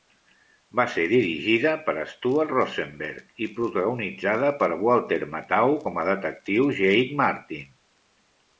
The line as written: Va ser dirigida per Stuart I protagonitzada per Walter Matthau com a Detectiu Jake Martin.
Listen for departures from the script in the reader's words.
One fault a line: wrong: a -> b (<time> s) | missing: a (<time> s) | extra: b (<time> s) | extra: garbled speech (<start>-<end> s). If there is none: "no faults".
extra: Rosenberg (2.5 s)